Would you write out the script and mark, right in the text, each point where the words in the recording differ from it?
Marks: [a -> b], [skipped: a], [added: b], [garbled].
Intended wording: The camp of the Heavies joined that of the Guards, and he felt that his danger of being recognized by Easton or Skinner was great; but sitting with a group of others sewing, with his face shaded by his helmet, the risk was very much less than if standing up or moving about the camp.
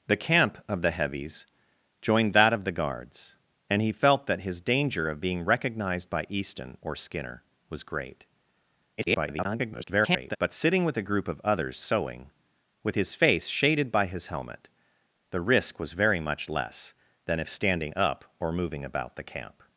The camp of the Heavies joined that of the Guards, and he felt that his danger of being recognized by Easton or Skinner was great; [garbled] but sitting with a group of others sewing, with his face shaded by his helmet, the risk was very much less than if standing up or moving about the camp.